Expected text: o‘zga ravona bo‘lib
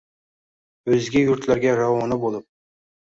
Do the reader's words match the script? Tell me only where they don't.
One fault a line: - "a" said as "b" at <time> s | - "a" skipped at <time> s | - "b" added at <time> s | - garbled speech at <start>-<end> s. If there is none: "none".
- "yurtlarga" added at 1.2 s